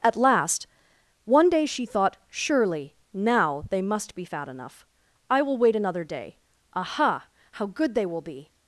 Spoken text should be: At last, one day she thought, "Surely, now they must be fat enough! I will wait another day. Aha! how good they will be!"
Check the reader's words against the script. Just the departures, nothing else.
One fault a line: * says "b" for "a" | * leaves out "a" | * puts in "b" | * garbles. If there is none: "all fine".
all fine